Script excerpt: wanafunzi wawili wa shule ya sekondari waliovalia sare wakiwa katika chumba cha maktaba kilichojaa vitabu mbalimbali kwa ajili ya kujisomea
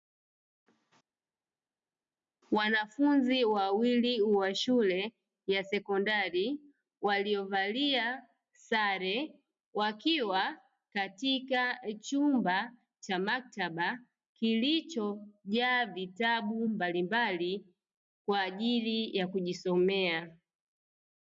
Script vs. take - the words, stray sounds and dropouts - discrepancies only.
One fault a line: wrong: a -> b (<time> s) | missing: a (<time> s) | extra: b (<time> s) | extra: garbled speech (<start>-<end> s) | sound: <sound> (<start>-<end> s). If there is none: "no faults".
no faults